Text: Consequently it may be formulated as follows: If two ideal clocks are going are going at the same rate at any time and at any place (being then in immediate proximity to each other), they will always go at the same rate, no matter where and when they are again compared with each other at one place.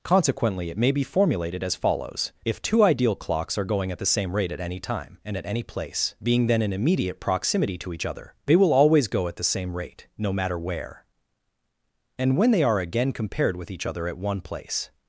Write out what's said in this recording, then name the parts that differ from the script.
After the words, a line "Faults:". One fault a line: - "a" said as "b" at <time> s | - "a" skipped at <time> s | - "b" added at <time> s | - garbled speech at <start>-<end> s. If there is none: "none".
Consequently it may be formulated as follows: If two ideal clocks are going at the same rate at any time and at any place (being then in immediate proximity to each other), they will always go at the same rate, no matter where and when they are again compared with each other at one place.
Faults:
- "are going" skipped at 3.9 s